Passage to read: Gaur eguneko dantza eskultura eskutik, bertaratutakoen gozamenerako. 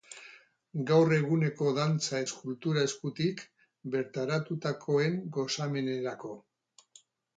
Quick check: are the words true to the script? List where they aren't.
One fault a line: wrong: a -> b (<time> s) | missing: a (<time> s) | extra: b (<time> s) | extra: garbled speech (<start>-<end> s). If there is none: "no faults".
no faults